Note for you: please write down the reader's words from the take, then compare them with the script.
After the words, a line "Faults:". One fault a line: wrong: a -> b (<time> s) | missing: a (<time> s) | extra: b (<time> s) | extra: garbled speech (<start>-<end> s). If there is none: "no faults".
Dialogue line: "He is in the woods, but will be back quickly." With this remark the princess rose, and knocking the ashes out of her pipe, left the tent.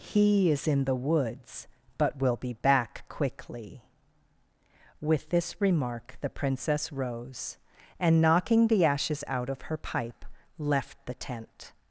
"He is in the woods, but will be back quickly." With this remark the princess rose, and knocking the ashes out of her pipe, left the tent.
Faults:
no faults